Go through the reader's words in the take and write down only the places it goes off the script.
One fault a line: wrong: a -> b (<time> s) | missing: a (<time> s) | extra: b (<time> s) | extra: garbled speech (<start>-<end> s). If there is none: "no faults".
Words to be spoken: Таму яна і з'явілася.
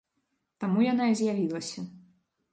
no faults